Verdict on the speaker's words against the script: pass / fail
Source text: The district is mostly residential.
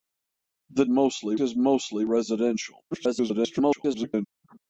fail